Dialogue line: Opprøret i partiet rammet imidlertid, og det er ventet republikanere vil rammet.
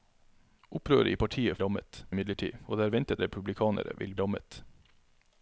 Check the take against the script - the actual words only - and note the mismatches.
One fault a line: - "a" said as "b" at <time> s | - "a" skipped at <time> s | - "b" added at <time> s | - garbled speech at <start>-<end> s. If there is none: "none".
none